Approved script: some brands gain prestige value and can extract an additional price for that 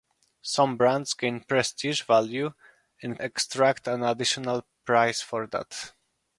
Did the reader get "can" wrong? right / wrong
wrong